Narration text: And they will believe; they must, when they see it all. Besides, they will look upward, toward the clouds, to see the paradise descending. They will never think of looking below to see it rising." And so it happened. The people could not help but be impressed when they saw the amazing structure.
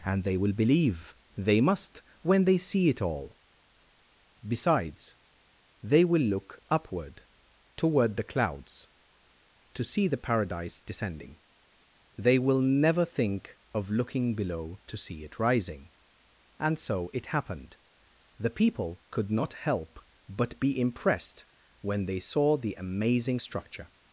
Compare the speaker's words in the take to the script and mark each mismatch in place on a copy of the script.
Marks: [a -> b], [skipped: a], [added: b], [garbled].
And they will believe; they must, when they see it all. Besides, they will look upward, toward the clouds, to see the paradise descending. They will never think of looking below to see it rising." And so it happened. The people could not help but be impressed when they saw the amazing structure.